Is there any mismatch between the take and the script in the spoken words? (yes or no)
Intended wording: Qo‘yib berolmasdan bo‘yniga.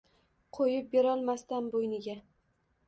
no